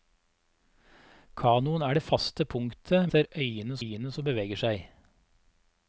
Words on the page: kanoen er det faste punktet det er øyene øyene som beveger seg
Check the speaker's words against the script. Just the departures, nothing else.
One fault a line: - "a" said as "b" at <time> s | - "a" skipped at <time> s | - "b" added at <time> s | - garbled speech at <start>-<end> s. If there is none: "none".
none